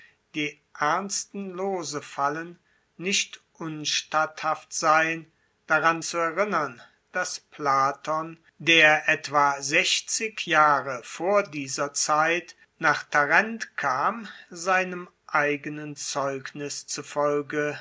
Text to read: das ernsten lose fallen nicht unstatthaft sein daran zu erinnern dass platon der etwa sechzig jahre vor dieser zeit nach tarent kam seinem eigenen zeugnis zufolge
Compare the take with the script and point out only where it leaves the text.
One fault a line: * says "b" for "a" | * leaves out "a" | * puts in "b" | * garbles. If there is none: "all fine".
* says "die" for "das"